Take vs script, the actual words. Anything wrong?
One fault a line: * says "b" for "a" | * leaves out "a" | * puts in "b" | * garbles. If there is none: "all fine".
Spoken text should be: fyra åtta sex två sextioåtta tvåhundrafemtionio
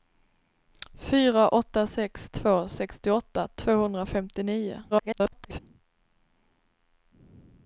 * garbles